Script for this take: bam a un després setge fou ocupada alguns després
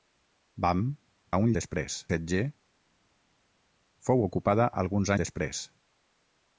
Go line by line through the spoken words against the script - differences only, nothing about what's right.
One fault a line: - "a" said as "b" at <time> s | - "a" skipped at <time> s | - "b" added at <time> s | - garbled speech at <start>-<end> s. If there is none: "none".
none